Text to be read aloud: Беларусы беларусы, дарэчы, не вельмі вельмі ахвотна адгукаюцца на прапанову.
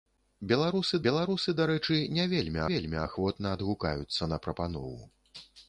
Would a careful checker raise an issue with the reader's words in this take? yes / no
no